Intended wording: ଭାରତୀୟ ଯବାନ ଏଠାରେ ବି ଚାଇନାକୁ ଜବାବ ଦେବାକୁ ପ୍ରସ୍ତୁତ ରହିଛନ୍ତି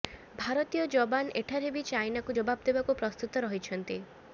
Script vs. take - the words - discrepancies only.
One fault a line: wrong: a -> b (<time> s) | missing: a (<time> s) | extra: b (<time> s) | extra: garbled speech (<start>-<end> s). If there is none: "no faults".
no faults